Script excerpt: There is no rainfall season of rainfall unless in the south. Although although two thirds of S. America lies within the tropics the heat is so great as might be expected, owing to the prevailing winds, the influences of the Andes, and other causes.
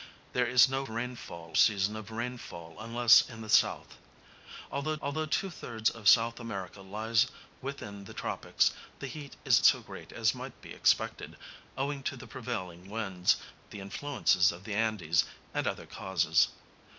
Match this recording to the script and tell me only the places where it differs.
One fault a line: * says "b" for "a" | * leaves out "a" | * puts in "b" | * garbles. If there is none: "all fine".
all fine